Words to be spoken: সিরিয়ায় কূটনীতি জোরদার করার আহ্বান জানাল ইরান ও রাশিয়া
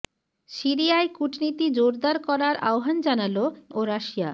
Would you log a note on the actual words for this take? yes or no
yes